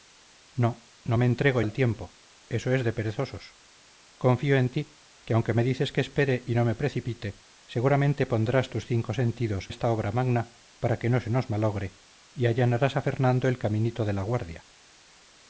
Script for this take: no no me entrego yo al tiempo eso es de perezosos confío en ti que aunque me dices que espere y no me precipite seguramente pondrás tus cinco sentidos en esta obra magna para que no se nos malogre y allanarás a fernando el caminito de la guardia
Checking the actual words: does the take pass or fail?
fail